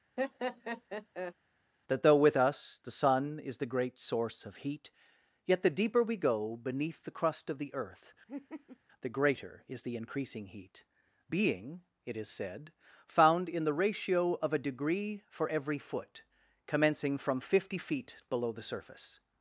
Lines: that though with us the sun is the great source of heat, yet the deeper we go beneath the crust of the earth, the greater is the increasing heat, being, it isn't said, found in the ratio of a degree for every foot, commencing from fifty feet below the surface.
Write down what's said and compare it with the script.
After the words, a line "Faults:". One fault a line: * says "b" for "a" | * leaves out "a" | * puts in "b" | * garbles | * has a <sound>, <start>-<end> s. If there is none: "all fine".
that though with us the sun is the great source of heat, yet the deeper we go beneath the crust of the earth, the greater is the increasing heat, being, it is said, found in the ratio of a degree for every foot, commencing from fifty feet below the surface.
Faults:
* has a laugh, 0.2-1.3 s
* has a laugh, 8.3-8.8 s
* says "is" for "isn't"